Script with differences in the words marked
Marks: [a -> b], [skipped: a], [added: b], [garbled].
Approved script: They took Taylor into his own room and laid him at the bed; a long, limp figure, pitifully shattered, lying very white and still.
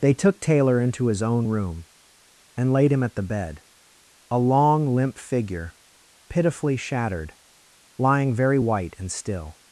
They took Taylor into his own room and laid him at the bed; a long, limp figure, pitifully shattered, lying very white and still.